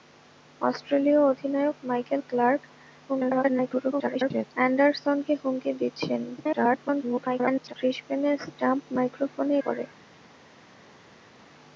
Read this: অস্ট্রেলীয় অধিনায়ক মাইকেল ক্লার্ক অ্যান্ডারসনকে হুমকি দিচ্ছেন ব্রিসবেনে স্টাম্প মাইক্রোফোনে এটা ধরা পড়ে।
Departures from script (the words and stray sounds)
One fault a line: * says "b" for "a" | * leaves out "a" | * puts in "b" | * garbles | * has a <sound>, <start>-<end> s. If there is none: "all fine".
* garbles
* garbles
* leaves out "এটা ধরা"